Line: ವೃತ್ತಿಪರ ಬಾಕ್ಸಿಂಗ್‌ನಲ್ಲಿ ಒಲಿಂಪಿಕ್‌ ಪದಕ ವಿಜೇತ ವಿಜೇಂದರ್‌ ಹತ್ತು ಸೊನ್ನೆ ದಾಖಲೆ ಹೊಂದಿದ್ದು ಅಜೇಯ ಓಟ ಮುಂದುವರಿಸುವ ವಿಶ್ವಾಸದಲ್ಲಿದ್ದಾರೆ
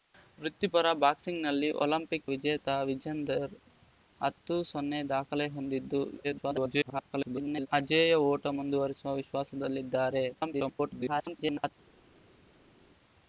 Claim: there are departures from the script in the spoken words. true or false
true